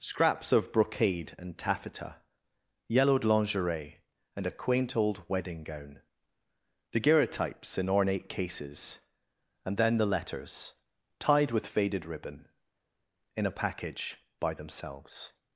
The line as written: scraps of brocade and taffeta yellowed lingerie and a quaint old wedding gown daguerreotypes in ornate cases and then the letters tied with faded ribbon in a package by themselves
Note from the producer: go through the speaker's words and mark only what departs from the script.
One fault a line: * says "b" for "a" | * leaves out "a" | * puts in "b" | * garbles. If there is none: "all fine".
all fine